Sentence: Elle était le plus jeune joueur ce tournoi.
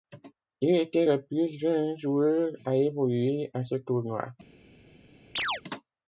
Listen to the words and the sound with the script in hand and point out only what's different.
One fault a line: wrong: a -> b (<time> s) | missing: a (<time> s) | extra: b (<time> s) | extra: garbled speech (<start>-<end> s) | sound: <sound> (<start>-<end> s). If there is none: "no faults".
wrong: Elle -> Il (0.6 s)
extra: à évoluer à (2.7 s)
sound: chirp (5.4-5.6 s)